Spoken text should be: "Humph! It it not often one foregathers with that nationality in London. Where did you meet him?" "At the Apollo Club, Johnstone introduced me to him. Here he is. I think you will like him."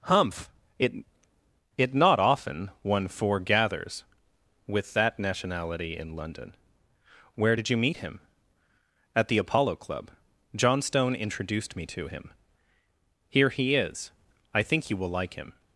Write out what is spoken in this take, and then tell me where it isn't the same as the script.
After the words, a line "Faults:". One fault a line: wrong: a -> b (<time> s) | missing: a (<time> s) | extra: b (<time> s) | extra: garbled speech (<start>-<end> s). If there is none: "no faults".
"Humph! It it not often one foregathers with that nationality in London. Where did you meet him?" "At the Apollo Club, Johnstone introduced me to him. Here he is. I think you will like him."
Faults:
no faults